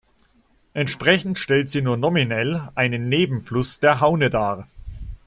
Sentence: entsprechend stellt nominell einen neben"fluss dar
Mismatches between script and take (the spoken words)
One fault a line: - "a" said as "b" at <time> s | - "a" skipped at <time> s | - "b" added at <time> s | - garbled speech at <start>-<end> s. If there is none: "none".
- "sie nur" added at 1.7 s
- "der haune" added at 3.8 s